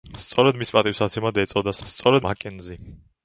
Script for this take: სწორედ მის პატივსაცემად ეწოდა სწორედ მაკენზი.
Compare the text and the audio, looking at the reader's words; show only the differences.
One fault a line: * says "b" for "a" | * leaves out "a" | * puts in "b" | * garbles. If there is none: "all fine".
all fine